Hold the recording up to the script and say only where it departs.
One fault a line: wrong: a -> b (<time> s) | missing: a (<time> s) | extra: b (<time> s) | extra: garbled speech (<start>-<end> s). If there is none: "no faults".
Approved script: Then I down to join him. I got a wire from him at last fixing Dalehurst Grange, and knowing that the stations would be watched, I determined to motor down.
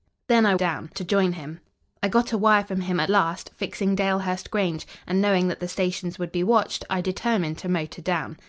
no faults